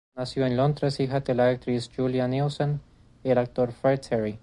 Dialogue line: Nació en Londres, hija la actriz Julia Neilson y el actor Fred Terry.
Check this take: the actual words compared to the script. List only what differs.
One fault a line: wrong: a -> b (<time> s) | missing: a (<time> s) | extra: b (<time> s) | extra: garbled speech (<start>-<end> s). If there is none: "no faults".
extra: de (1.2 s)